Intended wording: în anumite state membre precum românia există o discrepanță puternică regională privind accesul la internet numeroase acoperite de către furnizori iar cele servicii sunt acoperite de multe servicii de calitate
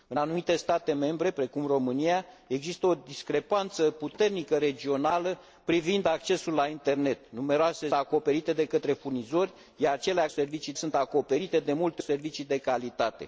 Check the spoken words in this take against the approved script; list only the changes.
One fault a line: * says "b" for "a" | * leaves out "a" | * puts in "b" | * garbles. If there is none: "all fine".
all fine